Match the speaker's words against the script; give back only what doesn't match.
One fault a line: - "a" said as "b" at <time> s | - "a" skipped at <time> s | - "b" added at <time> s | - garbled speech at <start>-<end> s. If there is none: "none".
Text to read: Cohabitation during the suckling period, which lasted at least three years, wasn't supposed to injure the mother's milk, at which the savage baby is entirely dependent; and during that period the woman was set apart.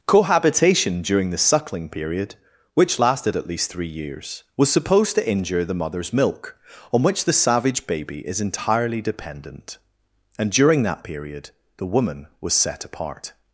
- "wasn't" said as "was" at 4.6 s
- "at" said as "on" at 6.9 s